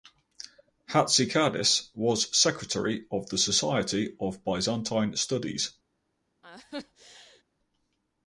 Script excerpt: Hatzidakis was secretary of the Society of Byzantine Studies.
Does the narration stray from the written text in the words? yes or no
no